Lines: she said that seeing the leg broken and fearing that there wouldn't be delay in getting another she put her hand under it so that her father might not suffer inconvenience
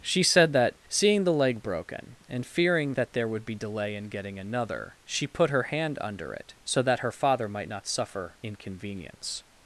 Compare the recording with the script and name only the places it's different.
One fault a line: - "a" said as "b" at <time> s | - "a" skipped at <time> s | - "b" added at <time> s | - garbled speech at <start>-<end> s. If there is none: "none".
- "wouldn't" said as "would" at 3.3 s